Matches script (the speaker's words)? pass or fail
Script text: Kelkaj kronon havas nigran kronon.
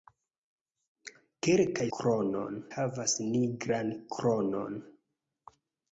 pass